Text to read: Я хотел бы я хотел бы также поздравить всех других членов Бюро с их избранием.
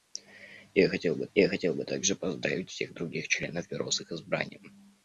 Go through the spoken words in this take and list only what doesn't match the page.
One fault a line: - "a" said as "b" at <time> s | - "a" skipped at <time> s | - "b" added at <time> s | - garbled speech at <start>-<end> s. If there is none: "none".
none